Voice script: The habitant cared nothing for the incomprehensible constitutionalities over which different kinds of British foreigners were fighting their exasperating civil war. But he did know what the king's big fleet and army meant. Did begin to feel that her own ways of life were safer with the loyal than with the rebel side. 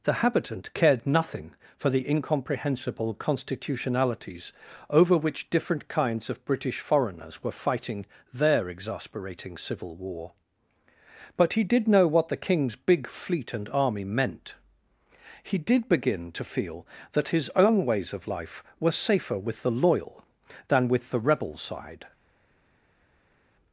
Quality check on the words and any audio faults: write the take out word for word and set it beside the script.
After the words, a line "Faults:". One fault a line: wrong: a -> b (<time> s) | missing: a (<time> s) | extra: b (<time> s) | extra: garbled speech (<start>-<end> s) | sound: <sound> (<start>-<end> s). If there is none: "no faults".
The habitant cared nothing for the incomprehensible constitutionalities over which different kinds of British foreigners were fighting their exasperating civil war. But he did know what the king's big fleet and army meant. He did begin to feel that his own ways of life were safer with the loyal than with the rebel side.
Faults:
extra: He (15.4 s)
wrong: her -> his (17.3 s)